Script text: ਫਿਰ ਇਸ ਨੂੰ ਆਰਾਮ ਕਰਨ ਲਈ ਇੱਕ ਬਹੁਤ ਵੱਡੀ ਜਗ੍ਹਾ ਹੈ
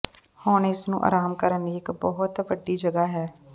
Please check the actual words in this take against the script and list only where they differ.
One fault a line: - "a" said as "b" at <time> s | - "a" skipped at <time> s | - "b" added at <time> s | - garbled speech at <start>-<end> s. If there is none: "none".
- "ਫਿਰ" said as "ਹੁਣ" at 0.4 s